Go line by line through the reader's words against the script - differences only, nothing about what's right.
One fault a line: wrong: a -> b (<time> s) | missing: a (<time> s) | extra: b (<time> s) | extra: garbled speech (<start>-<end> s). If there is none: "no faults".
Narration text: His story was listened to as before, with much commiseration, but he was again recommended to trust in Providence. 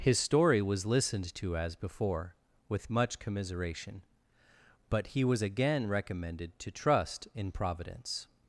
no faults